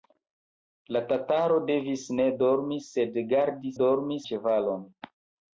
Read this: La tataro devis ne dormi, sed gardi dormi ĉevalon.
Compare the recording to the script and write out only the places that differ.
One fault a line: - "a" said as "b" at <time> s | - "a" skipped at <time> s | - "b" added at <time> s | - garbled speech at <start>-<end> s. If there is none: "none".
none